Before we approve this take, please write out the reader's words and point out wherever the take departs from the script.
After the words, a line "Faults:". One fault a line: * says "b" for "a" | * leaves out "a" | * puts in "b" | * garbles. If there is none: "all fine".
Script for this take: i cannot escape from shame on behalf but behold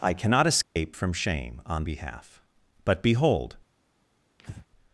i cannot escape from shame on behalf but behold
Faults:
all fine